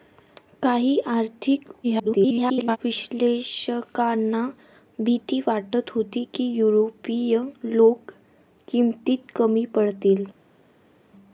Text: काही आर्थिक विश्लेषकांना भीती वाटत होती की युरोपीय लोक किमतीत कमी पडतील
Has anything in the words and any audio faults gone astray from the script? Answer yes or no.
yes